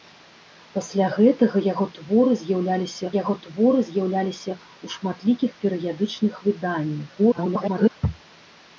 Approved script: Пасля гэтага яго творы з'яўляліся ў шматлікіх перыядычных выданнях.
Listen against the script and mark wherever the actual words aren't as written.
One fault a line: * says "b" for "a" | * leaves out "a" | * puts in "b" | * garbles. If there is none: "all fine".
* puts in "яго творы з'яўляліся"
* garbles